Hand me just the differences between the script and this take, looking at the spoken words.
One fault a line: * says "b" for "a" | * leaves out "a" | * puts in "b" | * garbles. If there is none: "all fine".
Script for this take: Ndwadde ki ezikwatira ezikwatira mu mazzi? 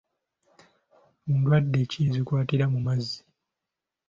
* leaves out "ezikwatira"